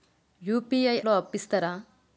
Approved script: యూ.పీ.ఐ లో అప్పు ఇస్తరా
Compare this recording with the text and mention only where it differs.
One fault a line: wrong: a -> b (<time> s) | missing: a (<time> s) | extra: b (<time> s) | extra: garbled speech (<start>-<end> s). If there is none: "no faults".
no faults